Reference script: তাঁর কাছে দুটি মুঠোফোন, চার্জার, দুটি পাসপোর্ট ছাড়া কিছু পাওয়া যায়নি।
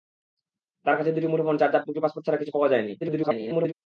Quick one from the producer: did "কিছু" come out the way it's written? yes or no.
yes